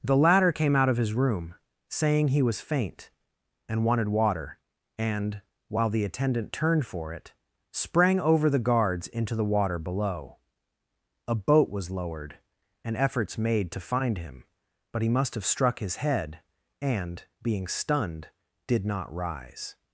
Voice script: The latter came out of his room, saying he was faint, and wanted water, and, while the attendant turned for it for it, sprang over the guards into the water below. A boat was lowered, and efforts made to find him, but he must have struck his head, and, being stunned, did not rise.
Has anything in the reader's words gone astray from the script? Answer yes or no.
yes